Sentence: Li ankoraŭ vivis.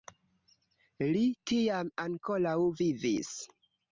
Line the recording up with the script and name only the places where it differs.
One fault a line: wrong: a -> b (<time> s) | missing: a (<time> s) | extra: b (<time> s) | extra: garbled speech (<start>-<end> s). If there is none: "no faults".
extra: tiam (1.5 s)